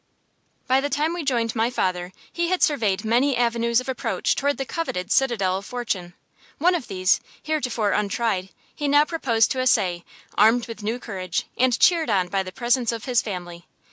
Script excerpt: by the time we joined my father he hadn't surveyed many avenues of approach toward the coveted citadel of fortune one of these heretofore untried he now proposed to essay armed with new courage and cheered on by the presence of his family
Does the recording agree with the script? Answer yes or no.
no